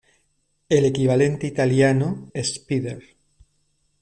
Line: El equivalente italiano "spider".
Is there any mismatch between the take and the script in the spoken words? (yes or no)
no